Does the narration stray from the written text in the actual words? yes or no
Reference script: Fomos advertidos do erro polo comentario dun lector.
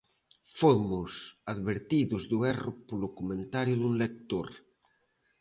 no